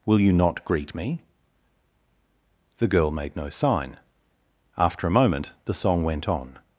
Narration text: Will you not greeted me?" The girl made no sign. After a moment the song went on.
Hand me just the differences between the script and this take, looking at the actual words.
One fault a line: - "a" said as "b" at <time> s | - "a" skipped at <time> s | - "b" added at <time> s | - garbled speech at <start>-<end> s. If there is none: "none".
- "greeted" said as "greet" at 0.6 s